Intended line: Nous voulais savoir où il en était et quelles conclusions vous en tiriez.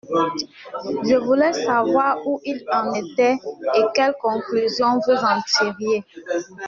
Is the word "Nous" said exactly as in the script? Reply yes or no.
no